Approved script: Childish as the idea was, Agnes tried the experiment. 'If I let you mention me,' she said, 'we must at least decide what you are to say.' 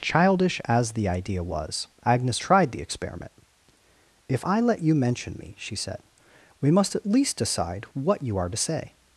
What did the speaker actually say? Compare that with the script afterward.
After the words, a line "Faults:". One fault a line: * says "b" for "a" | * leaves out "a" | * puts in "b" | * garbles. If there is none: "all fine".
Childish as the idea was, Agnes tried the experiment. 'If I let you mention me,' she said, 'we must at least decide what you are to say.'
Faults:
all fine